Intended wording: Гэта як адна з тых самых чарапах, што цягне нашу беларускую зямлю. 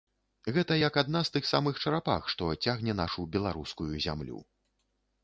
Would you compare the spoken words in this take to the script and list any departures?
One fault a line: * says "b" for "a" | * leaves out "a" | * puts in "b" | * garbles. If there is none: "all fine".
all fine